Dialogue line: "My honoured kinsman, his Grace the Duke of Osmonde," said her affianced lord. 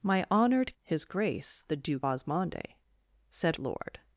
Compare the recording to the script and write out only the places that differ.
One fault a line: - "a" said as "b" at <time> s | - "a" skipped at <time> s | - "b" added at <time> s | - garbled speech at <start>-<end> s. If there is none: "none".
- "kinsman" skipped at 0.8 s
- "of" skipped at 2.1 s
- "her affianced" skipped at 3.6 s